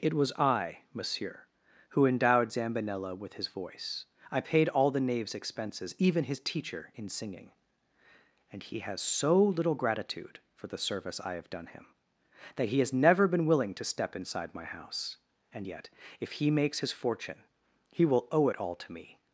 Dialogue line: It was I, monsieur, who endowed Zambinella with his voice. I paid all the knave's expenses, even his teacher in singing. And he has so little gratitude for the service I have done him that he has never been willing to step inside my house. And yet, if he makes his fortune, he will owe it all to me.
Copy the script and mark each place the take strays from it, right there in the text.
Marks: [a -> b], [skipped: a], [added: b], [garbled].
It was I, monsieur, who endowed Zambinella with his voice. I paid all the knave's expenses, even his teacher in singing. And he has so little gratitude for the service I have done him that he has never been willing to step inside my house. And yet, if he makes his fortune, he will owe it all to me.